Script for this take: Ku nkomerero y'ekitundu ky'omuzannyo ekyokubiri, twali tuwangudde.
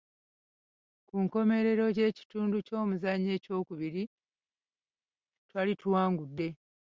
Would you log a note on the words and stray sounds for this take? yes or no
no